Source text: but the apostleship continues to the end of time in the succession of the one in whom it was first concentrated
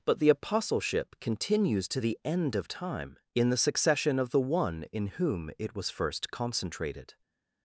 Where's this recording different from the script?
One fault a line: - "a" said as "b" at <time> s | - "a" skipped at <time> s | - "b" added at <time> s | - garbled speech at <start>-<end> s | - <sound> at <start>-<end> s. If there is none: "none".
none